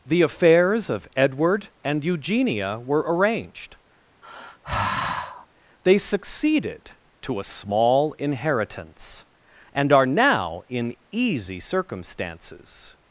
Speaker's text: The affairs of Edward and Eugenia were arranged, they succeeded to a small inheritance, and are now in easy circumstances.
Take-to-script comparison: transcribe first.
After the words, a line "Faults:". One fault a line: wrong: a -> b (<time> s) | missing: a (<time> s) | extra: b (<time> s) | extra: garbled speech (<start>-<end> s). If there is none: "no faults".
The affairs of Edward and Eugenia were arranged, they succeeded to a small inheritance, and are now in easy circumstances.
Faults:
no faults